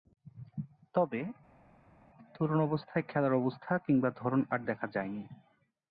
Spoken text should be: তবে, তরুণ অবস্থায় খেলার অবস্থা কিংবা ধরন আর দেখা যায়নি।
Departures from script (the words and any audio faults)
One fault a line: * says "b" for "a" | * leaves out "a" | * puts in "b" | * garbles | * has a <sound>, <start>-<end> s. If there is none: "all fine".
all fine